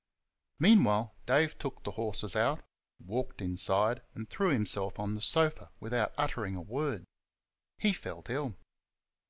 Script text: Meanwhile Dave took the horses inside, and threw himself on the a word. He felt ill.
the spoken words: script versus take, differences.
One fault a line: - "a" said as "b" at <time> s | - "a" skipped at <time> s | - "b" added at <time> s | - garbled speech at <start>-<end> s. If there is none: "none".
- "out walked" added at 2.4 s
- "sofa without uttering" added at 5.2 s